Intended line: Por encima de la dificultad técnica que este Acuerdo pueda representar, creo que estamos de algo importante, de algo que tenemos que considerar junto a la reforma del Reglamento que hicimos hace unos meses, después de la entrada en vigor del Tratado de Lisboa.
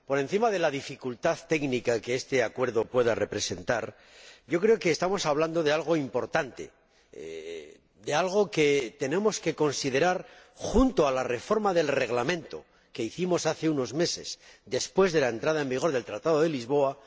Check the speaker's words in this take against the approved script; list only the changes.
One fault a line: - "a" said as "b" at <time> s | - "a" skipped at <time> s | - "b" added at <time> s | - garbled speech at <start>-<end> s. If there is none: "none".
- "hablando" added at 5.3 s